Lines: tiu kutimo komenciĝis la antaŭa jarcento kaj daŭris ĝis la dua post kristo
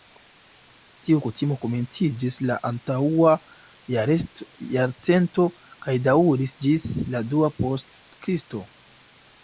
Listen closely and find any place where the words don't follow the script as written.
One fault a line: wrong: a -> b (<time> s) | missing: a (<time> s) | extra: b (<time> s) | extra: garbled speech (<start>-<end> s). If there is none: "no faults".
no faults